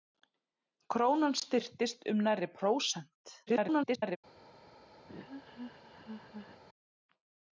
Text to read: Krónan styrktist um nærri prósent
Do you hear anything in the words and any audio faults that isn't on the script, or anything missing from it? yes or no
yes